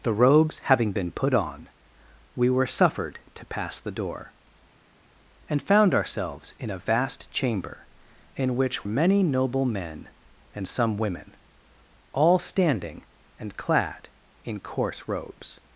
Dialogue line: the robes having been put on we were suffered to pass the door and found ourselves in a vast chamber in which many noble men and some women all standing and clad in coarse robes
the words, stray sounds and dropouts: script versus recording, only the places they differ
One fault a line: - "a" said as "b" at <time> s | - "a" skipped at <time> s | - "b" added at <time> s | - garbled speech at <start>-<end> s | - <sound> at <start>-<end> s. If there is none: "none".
none